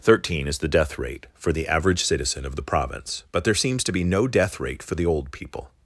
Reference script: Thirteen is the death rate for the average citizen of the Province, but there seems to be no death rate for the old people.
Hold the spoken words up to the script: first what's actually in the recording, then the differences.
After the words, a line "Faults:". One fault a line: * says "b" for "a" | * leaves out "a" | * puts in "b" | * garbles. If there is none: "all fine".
Thirteen is the death rate for the average citizen of the Province, but there seems to be no death rate for the old people.
Faults:
all fine